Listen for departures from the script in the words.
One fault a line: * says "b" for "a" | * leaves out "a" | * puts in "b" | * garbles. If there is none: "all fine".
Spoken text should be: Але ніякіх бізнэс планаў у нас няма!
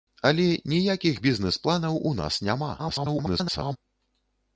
* garbles